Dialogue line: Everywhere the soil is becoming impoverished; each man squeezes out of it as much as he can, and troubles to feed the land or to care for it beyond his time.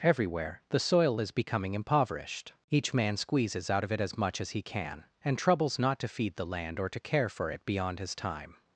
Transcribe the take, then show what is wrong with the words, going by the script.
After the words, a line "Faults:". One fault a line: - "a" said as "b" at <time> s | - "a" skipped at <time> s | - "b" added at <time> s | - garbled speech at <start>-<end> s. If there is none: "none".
Everywhere the soil is becoming impoverished; each man squeezes out of it as much as he can, and troubles not to feed the land or to care for it beyond his time.
Faults:
- "not" added at 5.8 s